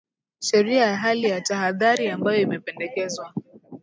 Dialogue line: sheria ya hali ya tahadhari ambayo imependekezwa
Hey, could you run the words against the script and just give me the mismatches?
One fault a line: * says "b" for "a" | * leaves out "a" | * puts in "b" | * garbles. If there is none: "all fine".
all fine